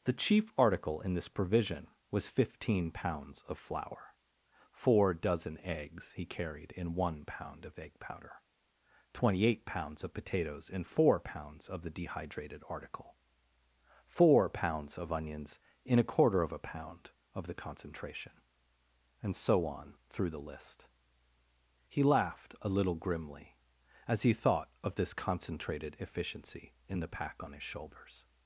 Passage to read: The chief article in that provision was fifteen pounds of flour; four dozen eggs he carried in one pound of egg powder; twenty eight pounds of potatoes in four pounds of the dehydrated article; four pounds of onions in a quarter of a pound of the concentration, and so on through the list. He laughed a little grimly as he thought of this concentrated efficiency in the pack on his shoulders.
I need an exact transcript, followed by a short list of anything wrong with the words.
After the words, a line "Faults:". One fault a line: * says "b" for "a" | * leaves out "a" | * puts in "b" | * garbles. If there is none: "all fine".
The chief article in this provision was fifteen pounds of flour; four dozen eggs he carried in one pound of egg powder; twenty eight pounds of potatoes in four pounds of the dehydrated article; four pounds of onions in a quarter of a pound of the concentration, and so on through the list. He laughed a little grimly as he thought of this concentrated efficiency in the pack on his shoulders.
Faults:
* says "this" for "that"